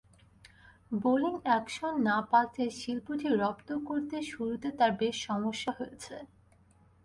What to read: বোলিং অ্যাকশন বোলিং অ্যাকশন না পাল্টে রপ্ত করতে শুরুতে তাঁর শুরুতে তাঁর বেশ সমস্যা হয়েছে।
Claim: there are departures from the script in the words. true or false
true